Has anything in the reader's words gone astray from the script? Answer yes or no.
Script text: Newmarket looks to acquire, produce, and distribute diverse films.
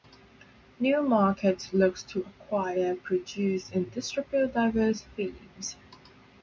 no